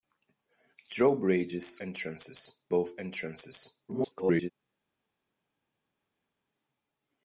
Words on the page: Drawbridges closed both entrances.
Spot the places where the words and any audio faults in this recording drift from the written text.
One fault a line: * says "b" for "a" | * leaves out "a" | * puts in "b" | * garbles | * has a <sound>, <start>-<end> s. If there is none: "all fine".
* says "entrances" for "closed"
* garbles